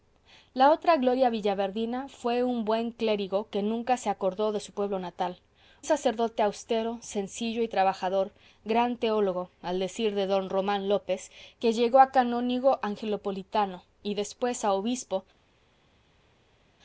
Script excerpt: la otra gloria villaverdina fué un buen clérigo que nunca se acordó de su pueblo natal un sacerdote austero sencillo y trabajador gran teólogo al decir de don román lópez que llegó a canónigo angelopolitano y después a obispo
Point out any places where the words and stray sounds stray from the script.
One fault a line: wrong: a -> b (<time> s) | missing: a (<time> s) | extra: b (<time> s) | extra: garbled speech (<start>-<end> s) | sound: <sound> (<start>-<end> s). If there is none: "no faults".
missing: un (5.4 s)